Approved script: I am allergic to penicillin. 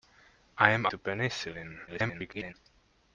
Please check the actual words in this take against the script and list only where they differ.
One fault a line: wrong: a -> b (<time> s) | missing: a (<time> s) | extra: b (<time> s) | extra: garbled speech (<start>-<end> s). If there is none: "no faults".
missing: allergic (0.9 s)
extra: garbled speech (1.9-2.5 s)